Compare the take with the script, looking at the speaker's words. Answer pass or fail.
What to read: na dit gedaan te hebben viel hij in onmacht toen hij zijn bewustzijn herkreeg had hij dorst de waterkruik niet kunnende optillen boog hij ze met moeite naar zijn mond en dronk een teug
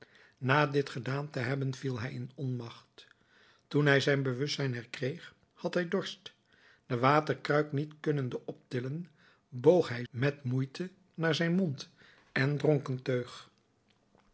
fail